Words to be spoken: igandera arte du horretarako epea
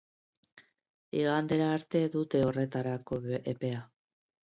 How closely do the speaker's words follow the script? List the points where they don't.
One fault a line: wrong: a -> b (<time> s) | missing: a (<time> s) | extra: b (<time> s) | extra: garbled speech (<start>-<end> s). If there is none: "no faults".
wrong: du -> dute (2.2 s)